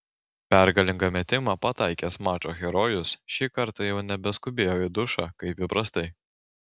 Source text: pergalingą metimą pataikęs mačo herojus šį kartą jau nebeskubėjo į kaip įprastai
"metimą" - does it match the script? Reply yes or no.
yes